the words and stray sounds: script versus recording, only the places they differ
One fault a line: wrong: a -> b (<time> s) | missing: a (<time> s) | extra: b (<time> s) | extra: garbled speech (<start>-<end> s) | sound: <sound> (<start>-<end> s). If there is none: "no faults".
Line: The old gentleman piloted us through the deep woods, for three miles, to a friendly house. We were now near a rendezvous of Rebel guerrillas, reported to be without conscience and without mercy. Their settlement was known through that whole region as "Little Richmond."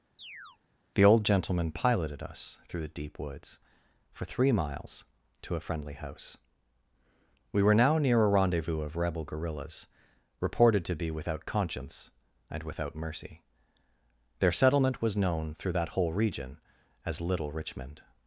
sound: chirp (0.2-0.6 s)